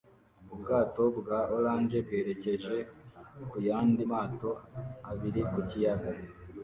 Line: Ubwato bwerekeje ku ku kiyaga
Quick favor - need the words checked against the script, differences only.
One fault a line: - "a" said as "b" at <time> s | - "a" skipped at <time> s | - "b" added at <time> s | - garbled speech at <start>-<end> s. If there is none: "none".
- "bwa orange" added at 1.2 s
- "yandi mato abiri" added at 3.7 s